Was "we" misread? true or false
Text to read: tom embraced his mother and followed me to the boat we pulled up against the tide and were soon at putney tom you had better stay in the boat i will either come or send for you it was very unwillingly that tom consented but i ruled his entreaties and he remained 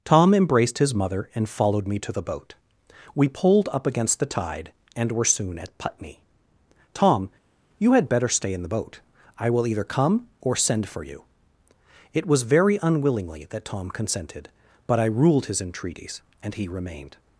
false